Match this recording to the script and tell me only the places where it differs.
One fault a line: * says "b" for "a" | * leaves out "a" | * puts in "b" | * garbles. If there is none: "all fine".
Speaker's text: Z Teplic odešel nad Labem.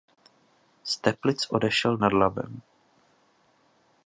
all fine